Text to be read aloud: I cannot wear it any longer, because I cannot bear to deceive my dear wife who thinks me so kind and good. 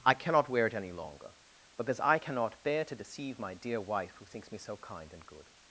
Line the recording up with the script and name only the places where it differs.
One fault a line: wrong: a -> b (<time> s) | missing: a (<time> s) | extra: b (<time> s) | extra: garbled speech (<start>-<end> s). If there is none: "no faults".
no faults